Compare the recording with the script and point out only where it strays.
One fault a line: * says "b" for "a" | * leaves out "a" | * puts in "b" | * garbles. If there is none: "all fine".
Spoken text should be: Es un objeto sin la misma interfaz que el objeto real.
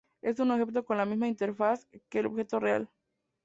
* says "con" for "sin"